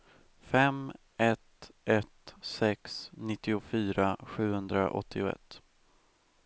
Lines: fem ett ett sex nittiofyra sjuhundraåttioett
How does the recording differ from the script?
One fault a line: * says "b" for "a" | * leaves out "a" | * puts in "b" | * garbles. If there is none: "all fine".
all fine